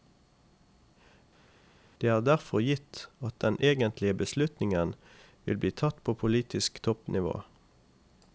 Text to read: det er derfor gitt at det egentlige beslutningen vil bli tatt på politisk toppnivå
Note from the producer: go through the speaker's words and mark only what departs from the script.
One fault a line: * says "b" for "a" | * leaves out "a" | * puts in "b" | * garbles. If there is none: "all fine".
* says "den" for "det"